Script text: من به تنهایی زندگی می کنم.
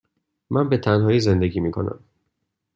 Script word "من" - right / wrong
right